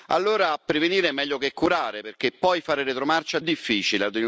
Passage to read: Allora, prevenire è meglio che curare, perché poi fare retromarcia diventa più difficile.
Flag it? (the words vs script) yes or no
yes